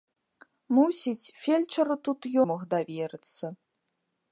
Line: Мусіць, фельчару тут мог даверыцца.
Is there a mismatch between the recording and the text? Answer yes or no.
no